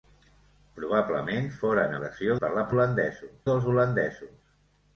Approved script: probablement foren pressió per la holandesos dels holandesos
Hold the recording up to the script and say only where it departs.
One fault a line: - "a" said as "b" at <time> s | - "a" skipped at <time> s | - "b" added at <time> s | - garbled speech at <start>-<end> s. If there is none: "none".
none